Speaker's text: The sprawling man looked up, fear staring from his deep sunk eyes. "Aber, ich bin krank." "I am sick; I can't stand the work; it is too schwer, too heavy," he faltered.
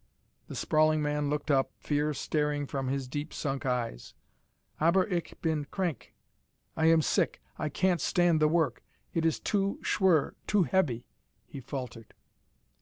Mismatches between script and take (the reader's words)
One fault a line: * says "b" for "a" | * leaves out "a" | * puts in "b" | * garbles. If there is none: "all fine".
all fine